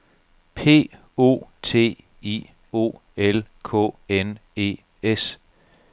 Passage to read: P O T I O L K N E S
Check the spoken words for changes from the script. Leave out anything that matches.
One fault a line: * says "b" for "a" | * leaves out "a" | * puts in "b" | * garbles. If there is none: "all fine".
all fine